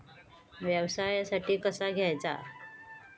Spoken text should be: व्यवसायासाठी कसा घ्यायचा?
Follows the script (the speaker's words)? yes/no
yes